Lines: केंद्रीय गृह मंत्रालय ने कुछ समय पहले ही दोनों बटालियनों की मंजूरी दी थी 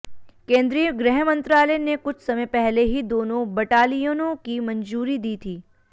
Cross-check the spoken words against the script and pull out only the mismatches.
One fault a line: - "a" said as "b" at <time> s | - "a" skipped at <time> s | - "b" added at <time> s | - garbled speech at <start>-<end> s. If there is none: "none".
none